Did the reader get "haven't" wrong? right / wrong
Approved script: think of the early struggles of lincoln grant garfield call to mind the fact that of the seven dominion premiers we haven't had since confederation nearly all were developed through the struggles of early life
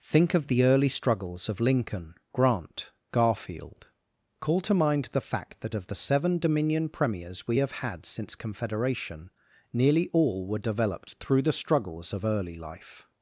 wrong